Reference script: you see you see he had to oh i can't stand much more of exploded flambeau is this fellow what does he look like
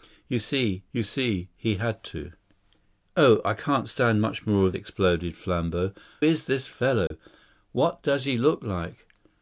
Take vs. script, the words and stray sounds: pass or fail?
fail